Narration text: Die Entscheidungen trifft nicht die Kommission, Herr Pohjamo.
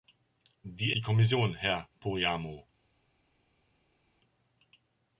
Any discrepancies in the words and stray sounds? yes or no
yes